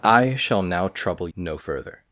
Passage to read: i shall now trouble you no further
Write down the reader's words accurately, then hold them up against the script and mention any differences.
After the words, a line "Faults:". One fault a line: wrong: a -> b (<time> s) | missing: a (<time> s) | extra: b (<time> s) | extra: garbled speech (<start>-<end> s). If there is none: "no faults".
i shall now trouble no further
Faults:
missing: you (1.3 s)